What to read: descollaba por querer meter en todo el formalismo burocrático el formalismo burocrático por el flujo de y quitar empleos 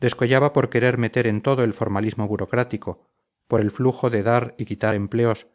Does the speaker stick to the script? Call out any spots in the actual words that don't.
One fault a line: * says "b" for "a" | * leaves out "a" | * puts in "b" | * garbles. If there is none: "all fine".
* leaves out "el formalismo burocrático"
* puts in "dar"